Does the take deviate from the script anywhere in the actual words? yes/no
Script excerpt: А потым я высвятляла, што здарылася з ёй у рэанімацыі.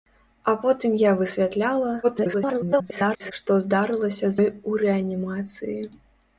yes